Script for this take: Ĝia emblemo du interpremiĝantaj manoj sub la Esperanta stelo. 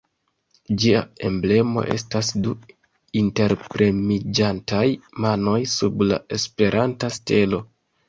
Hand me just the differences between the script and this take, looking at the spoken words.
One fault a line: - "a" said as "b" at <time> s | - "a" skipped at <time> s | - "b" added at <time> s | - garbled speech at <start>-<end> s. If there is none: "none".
- "estas" added at 1.9 s